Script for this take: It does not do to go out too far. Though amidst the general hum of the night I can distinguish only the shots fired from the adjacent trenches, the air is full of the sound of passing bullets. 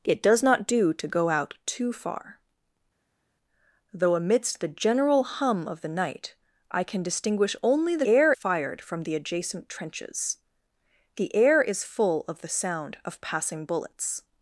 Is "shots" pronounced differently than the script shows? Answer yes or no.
yes